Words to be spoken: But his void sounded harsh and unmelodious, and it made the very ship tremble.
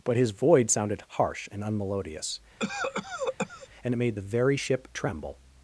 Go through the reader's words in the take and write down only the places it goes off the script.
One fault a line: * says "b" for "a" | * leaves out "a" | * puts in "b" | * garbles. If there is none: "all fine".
all fine